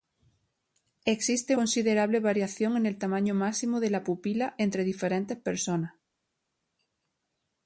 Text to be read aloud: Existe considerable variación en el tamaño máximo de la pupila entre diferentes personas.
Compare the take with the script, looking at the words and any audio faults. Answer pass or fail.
pass